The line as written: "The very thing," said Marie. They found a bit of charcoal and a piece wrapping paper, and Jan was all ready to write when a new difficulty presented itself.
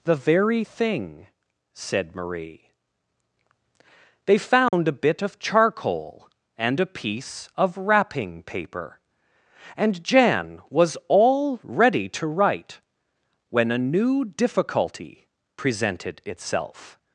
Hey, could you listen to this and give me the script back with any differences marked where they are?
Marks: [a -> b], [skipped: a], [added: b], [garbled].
"The very thing," said Marie. They found a bit of charcoal and a piece [added: of] wrapping paper, and Jan was all ready to write when a new difficulty presented itself.